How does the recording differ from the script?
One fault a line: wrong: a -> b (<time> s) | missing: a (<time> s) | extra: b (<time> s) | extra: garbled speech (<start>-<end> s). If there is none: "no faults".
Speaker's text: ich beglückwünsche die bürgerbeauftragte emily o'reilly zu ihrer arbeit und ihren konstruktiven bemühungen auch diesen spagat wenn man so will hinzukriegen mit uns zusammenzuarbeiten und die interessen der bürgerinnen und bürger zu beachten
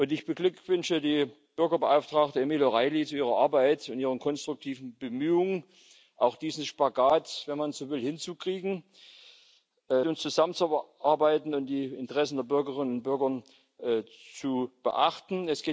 missing: mit (8.8 s)